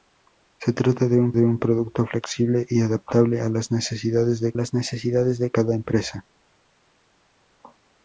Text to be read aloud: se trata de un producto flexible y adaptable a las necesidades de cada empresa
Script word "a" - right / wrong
right